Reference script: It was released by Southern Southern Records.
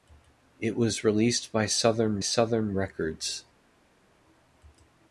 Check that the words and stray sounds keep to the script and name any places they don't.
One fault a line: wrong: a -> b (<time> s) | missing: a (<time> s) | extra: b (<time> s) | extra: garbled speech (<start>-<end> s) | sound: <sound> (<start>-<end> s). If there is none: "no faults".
no faults